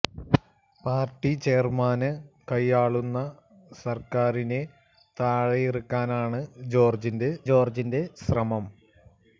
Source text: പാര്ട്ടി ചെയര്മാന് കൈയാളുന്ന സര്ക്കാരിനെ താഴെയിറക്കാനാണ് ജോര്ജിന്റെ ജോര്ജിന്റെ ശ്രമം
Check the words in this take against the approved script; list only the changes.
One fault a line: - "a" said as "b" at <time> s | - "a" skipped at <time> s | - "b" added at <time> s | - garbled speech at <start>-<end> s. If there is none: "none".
none